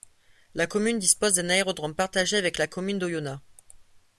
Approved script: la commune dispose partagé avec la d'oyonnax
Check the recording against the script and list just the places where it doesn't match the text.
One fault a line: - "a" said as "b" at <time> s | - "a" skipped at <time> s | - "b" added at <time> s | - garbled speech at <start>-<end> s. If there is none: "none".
- "d'un aérodrome" added at 1.4 s
- "commune" added at 2.6 s